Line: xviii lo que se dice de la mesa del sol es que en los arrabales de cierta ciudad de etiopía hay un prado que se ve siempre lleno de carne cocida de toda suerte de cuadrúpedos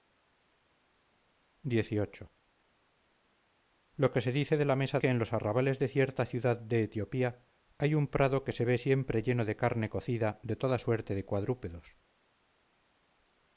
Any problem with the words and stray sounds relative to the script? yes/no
yes